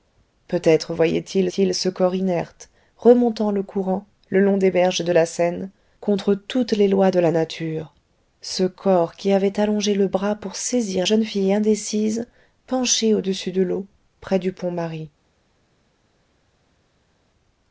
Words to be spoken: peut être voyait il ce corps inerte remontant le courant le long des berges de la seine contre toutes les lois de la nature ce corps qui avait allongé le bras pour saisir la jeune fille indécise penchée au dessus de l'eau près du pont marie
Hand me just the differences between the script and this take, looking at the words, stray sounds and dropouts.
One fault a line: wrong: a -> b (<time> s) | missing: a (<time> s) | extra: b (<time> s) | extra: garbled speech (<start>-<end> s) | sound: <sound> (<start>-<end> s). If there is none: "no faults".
extra: il (1.6 s)
missing: la (11.1 s)